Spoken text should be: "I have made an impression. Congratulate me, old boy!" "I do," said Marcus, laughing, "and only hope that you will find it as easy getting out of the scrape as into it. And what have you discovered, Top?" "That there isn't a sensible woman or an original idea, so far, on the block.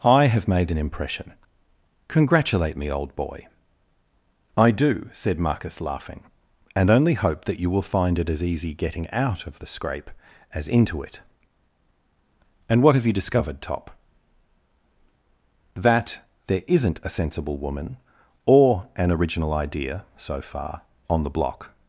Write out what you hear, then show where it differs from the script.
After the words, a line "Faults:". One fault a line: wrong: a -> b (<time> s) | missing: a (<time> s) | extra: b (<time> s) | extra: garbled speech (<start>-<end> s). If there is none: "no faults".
"I have made an impression. Congratulate me, old boy!" "I do," said Marcus, laughing, "and only hope that you will find it as easy getting out of the scrape as into it. And what have you discovered, Top?" "That there isn't a sensible woman or an original idea, so far, on the block.
Faults:
no faults